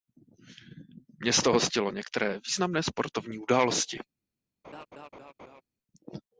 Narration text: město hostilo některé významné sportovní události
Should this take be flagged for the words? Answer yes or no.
no